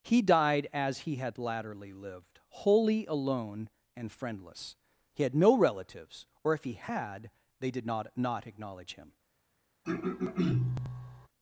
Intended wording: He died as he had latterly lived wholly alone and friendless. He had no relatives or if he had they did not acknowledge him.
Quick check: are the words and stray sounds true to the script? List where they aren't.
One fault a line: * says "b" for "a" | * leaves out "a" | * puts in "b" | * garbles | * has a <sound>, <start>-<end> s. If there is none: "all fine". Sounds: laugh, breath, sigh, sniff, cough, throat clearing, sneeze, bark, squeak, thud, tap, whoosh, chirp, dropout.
* puts in "not"
* has a throat clearing, 9.8-11.3 s